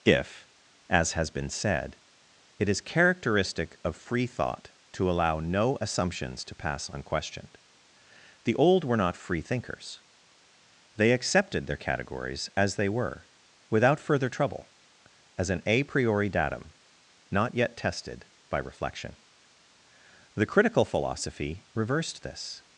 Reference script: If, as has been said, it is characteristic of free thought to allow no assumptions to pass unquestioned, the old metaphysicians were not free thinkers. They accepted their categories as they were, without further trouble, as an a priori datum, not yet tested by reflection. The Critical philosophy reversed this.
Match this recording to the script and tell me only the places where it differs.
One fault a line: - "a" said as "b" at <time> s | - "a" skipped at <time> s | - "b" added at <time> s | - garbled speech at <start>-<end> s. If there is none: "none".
- "metaphysicians" skipped at 8.8 s